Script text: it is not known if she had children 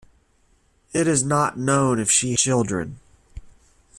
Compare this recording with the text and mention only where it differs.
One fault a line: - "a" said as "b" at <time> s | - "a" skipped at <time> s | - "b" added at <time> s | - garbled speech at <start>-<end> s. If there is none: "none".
- "had" skipped at 2.3 s